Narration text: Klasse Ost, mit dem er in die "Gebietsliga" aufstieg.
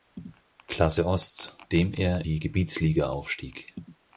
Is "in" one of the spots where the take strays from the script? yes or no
yes